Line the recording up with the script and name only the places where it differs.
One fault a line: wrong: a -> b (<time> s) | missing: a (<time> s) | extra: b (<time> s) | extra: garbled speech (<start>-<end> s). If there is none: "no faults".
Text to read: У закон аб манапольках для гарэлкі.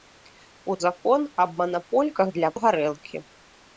no faults